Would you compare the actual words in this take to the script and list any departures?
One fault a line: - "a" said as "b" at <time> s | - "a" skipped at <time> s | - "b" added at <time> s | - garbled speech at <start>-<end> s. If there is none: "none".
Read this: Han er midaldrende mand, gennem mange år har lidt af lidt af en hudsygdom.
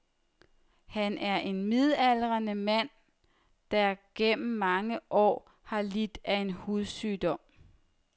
- "en" added at 1.4 s
- "der" added at 3.7 s
- "lidt af" skipped at 6.3 s